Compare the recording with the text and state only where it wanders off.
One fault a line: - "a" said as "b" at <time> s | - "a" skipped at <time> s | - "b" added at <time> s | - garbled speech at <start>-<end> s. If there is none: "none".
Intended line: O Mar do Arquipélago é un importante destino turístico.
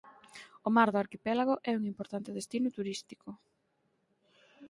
none